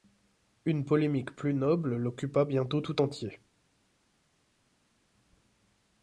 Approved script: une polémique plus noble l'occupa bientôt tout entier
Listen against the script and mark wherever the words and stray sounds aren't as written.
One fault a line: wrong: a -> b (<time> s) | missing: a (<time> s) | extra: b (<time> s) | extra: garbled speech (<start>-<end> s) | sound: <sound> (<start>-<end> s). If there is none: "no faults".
no faults